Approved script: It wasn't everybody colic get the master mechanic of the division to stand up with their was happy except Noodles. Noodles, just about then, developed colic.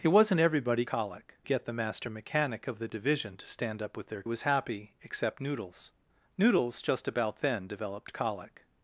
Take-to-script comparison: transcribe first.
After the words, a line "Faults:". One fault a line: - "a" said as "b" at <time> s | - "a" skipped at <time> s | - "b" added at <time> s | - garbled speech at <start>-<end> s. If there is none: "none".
It wasn't everybody colic get the master mechanic of the division to stand up with their was happy except Noodles. Noodles, just about then, developed colic.
Faults:
none